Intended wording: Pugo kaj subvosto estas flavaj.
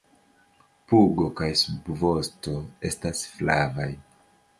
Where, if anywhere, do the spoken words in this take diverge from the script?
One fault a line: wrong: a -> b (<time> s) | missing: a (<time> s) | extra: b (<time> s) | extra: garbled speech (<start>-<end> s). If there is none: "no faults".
no faults